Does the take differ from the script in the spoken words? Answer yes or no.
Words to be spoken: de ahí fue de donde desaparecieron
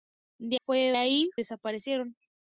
yes